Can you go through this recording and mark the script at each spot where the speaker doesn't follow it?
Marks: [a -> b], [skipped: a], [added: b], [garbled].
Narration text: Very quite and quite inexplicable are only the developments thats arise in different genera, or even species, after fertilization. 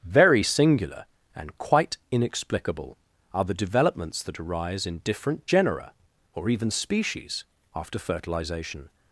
Very [quite -> singular] and quite inexplicable are [skipped: only] the developments [thats -> that] arise in different genera, or even species, after fertilization.